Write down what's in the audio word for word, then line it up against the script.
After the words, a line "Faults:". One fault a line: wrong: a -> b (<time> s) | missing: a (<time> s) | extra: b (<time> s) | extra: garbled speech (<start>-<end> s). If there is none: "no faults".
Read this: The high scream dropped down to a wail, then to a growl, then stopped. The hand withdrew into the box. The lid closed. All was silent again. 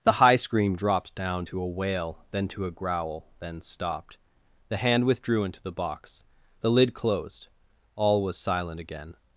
The high scream dropped down to a wail, then to a growl, then stopped. The hand withdrew into the box. The lid closed. All was silent again.
Faults:
no faults